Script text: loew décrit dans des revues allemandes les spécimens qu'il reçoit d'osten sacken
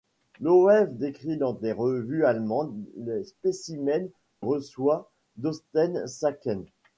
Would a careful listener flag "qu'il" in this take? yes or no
yes